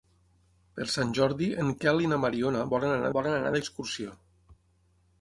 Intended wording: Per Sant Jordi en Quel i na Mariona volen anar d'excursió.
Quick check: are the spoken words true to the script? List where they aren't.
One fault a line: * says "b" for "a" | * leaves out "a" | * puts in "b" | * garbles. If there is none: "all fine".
* puts in "volen anar"